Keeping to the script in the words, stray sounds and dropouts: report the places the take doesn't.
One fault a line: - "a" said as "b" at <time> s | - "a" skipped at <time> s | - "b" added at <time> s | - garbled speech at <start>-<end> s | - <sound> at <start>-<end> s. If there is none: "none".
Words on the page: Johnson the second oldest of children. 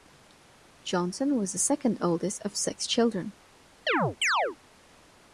- "was" added at 1.4 s
- "six" added at 2.6 s
- chirp at 3.9-4.6 s